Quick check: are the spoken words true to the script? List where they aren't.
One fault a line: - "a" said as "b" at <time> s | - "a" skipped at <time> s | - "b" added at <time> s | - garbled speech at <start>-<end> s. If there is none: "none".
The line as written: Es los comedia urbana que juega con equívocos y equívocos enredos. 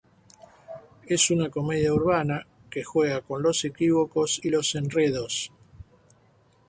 - "los" said as "una" at 1.3 s
- "los" added at 3.4 s
- "equívocos" said as "los" at 4.5 s